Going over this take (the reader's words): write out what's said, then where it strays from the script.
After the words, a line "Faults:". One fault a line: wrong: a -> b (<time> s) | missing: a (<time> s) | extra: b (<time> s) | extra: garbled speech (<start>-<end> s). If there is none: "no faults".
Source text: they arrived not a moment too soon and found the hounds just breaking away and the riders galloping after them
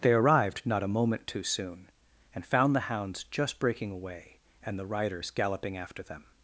they arrived not a moment too soon and found the hounds just breaking away and the riders galloping after them
Faults:
no faults